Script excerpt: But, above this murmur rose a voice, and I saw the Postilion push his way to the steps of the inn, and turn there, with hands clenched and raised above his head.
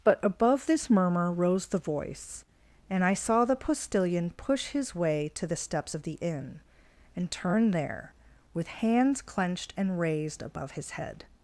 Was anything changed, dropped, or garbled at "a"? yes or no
yes